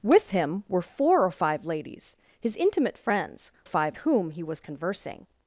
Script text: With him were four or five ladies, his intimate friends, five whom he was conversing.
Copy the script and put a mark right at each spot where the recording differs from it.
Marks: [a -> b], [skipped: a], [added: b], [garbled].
With him were four or five ladies, his intimate friends, five whom he was conversing.